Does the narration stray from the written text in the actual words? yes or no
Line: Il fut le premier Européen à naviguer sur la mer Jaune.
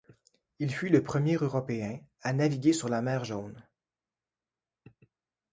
no